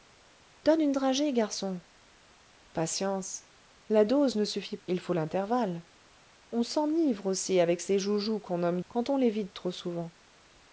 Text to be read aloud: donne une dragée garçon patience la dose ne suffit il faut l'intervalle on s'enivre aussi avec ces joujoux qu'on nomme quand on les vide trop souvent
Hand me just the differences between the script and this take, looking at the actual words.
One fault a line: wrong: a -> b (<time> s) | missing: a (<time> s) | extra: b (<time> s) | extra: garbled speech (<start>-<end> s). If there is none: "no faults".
no faults